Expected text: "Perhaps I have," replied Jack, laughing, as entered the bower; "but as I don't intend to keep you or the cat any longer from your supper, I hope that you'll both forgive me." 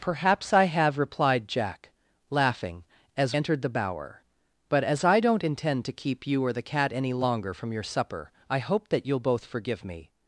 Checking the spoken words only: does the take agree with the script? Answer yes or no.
yes